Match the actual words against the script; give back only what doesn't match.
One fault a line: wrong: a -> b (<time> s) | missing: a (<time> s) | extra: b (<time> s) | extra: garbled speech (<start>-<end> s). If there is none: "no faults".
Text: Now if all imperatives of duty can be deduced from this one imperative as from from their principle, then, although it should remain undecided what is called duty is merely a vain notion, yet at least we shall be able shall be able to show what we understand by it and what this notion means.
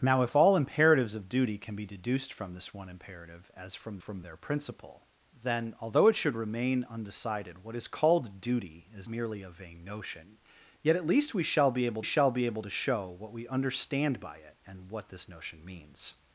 no faults